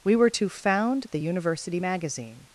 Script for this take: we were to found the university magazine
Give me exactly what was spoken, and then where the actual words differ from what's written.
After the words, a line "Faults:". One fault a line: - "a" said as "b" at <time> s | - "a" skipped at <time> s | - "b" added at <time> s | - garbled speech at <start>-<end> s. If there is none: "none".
we were to found the university magazine
Faults:
none